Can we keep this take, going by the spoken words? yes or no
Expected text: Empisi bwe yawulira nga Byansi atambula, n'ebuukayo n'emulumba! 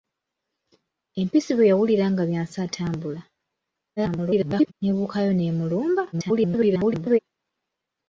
no